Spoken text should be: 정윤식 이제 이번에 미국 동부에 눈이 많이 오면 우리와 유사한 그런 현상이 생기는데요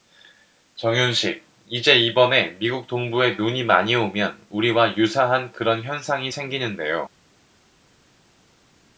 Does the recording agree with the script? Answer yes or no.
yes